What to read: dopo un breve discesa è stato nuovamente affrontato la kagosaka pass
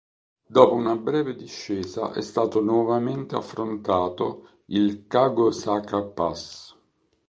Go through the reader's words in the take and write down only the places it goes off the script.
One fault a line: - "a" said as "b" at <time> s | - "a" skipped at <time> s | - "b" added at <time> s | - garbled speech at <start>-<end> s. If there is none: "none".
- "un" said as "una" at 0.7 s
- "la" said as "il" at 4.7 s